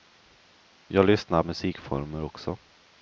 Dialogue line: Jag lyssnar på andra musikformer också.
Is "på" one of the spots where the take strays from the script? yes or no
yes